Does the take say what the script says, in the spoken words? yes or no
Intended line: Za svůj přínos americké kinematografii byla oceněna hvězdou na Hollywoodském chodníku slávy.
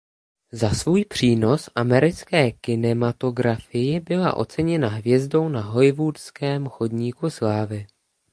yes